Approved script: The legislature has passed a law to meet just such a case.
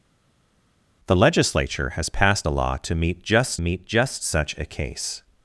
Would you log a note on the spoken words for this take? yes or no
yes